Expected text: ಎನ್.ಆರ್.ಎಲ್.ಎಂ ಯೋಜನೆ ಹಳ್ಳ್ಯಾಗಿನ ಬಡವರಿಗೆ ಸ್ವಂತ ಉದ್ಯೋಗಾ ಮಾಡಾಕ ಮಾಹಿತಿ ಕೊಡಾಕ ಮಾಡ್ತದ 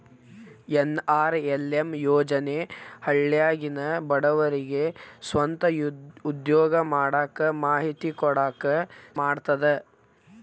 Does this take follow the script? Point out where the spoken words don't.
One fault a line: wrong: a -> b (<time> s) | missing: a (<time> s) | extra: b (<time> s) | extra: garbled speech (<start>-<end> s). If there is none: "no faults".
no faults